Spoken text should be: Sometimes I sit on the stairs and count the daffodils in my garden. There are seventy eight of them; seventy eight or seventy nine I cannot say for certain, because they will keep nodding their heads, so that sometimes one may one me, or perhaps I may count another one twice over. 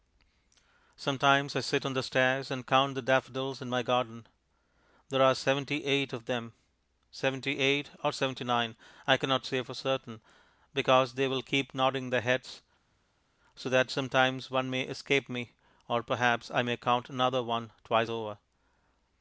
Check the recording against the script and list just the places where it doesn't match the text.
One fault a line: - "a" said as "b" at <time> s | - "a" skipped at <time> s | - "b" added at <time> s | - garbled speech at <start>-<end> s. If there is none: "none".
- "one" said as "escape" at 14.8 s